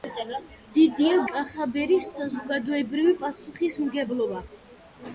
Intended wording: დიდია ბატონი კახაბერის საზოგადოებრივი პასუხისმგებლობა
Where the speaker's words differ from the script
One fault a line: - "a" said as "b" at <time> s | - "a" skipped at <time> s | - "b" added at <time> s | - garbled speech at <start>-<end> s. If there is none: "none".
- "ბატონი" skipped at 1.2 s